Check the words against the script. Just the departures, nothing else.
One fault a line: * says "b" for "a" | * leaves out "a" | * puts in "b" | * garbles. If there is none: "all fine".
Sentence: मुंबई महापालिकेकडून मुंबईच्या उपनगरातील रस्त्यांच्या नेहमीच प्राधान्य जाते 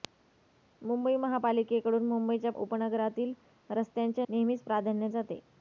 all fine